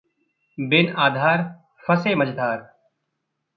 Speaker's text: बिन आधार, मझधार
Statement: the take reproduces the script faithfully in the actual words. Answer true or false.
false